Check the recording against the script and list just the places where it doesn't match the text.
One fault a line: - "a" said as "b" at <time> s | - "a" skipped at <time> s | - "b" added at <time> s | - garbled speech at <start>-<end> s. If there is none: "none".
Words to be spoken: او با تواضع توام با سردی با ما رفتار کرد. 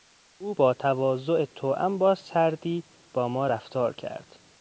none